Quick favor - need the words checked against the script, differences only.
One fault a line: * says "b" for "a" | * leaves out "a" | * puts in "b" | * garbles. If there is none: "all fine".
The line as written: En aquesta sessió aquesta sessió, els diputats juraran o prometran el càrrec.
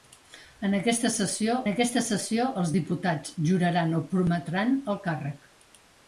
all fine